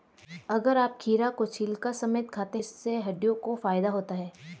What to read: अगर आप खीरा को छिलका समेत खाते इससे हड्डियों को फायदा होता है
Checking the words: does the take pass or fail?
pass